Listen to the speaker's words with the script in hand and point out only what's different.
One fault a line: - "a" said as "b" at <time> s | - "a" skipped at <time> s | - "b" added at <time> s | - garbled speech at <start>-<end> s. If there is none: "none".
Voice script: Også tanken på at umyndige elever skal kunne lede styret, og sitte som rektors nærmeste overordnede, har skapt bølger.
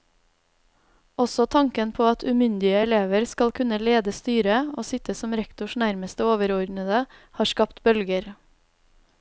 none